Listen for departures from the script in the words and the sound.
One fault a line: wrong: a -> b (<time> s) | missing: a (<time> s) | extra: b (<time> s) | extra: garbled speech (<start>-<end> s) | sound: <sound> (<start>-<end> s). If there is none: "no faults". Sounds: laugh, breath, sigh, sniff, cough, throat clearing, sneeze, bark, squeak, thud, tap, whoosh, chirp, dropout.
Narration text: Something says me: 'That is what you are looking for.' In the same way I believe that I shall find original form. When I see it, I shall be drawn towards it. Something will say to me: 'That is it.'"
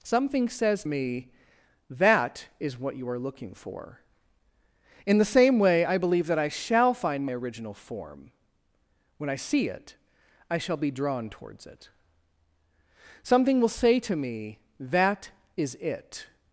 no faults